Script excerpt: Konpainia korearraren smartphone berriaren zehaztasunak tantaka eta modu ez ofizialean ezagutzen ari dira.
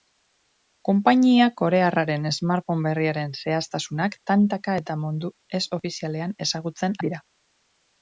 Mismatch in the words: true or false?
true